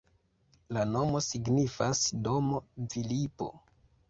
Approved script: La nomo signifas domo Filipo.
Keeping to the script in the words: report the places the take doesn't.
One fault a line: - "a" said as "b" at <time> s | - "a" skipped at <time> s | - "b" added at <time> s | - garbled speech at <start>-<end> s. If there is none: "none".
none